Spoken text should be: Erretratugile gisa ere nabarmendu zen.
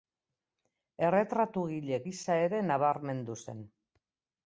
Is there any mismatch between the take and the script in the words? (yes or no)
no